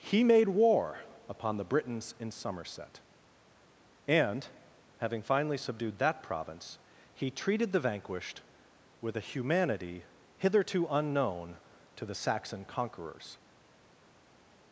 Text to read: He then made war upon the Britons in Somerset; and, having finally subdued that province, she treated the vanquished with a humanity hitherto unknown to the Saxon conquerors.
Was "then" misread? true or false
true